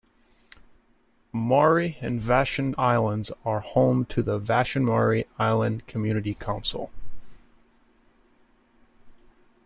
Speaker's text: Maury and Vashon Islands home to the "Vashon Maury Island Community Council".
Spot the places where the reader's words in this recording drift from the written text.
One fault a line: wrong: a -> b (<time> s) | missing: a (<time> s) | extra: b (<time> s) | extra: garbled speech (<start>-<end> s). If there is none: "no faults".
extra: are (3.4 s)